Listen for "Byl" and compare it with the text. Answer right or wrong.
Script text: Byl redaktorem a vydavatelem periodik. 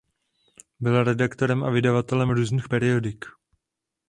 right